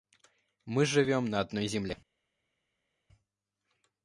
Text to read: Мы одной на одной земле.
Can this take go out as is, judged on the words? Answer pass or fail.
fail